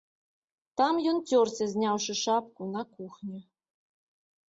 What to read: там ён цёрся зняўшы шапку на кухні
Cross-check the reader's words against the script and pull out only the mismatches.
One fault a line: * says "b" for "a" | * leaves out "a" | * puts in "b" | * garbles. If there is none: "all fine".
all fine